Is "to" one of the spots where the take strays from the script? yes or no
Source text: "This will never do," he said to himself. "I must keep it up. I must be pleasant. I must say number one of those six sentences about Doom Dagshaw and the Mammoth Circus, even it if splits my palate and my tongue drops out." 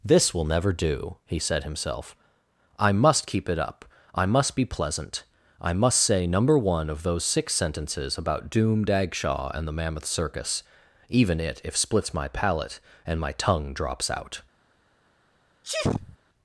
yes